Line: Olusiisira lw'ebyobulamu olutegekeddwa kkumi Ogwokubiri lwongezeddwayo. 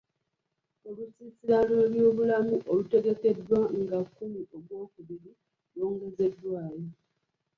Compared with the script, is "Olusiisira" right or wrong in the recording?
right